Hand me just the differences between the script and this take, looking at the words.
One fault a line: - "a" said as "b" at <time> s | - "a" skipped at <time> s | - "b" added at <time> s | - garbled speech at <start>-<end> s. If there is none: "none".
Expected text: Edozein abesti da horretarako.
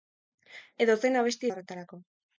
none